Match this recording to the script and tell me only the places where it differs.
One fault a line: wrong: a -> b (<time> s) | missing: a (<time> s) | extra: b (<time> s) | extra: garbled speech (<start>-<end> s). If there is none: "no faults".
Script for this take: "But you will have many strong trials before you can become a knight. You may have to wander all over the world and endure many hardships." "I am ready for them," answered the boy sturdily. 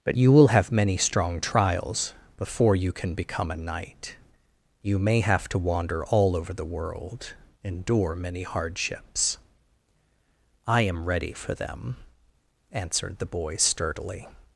missing: and (7.3 s)